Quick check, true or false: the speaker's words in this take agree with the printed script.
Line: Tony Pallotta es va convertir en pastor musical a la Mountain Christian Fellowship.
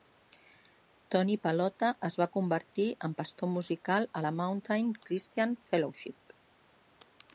true